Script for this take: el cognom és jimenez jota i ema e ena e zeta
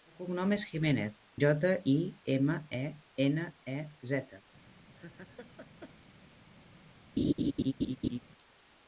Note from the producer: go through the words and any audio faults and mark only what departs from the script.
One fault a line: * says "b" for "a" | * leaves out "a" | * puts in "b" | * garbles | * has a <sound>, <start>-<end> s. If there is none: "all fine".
* has a laugh, 5.0-6.0 s
* has a laugh, 7.2-8.2 s